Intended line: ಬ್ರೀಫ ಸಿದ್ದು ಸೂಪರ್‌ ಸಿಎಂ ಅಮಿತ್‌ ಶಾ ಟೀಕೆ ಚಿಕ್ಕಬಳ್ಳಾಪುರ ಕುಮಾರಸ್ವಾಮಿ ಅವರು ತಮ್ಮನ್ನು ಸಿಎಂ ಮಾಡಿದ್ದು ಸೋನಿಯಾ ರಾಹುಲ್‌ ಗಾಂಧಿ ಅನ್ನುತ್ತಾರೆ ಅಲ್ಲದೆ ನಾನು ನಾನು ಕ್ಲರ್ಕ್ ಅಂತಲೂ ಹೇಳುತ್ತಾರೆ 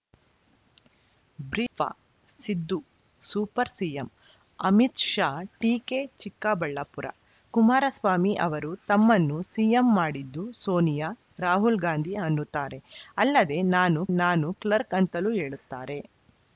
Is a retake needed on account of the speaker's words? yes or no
no